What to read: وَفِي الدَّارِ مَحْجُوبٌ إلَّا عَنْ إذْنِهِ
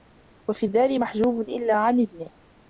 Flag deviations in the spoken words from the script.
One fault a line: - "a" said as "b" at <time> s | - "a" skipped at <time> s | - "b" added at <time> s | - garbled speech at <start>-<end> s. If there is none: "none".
none